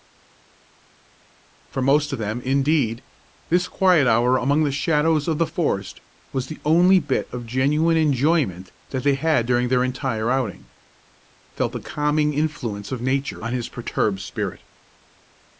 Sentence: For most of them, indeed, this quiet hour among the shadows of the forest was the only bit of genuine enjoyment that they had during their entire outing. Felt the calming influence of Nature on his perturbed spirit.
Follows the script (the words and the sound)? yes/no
yes